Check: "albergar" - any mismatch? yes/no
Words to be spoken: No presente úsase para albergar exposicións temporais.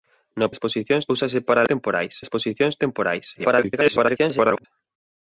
yes